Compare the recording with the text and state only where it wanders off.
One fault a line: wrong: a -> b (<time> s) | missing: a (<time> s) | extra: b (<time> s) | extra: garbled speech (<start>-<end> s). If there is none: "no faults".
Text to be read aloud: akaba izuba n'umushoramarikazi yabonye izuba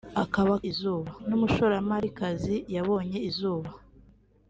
no faults